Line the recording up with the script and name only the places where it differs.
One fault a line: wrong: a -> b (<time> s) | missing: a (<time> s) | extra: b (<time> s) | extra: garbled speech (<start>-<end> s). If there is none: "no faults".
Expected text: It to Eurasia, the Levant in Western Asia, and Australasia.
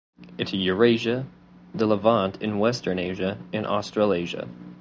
no faults